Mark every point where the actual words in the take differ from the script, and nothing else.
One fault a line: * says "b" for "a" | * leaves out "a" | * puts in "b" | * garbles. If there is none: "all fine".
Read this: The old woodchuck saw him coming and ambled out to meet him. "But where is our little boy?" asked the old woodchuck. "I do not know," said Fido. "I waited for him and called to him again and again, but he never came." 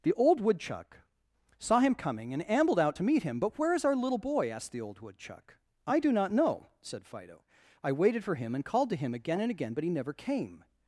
all fine